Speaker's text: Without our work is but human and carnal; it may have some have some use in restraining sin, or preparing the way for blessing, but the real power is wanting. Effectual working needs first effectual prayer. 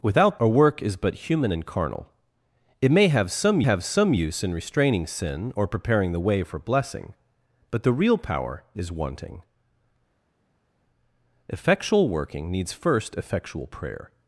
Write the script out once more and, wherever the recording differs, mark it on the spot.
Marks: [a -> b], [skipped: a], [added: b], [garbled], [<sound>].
Without our work is but human and carnal; it may have some have some use in restraining sin, or preparing the way for blessing, but the real power is wanting. Effectual working needs first effectual prayer.